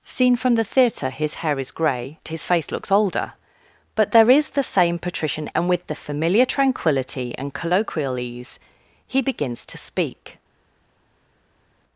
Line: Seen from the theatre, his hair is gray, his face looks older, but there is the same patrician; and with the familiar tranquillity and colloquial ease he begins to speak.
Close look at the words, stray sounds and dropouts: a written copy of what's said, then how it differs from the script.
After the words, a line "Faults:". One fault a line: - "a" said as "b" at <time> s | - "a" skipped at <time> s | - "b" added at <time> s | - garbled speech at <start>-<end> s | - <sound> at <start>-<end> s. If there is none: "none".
Seen from the theatre, his hair is gray, his face looks older, but there is the same patrician; and with the familiar tranquillity and colloquial ease he begins to speak.
Faults:
none